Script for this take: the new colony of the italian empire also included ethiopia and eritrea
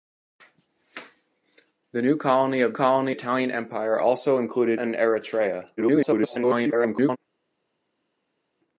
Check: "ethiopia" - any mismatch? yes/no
yes